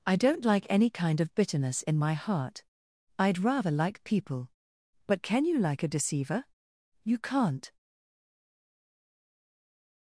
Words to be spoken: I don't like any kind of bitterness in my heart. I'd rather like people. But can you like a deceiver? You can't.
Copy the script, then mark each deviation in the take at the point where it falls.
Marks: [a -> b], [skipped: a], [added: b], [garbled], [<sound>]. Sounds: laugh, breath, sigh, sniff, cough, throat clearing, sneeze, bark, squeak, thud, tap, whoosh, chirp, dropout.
I don't like any kind of bitterness in my heart. I'd rather like people. But can you like a deceiver? You can't.